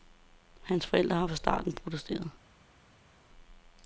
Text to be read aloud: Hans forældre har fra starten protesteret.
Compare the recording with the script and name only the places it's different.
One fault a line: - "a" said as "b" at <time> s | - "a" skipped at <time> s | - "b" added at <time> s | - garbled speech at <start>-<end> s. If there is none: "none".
none